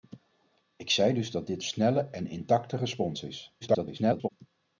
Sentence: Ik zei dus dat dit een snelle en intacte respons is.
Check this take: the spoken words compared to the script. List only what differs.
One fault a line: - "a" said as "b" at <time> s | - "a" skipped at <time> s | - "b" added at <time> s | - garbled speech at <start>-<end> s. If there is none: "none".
- "een" skipped at 1.6 s
- garbled speech at 3.6-4.3 s